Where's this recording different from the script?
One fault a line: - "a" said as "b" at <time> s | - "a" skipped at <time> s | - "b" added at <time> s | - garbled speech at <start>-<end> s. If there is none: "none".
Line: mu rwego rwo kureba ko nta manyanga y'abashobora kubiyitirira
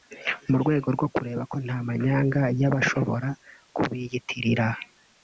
none